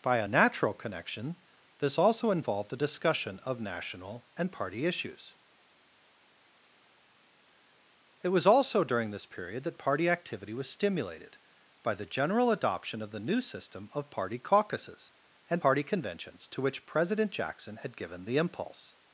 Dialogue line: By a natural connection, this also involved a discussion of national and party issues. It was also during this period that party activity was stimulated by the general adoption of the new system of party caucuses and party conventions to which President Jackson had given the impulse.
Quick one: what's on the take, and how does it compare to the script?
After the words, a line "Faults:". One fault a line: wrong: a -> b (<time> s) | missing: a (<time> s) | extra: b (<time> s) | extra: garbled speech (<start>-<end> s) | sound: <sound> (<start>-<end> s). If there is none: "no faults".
By a natural connection, this also involved a discussion of national and party issues. It was also during this period that party activity was stimulated by the general adoption of the new system of party caucuses and party conventions to which President Jackson had given the impulse.
Faults:
no faults